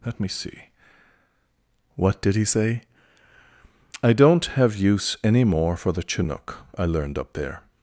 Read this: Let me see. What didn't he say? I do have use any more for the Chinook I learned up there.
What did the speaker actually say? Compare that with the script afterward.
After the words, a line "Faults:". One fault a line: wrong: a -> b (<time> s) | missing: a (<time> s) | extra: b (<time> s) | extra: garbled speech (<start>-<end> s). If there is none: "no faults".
Let me see. What did he say? I don't have use any more for the Chinook I learned up there.
Faults:
wrong: didn't -> did (2.2 s)
wrong: do -> don't (4.1 s)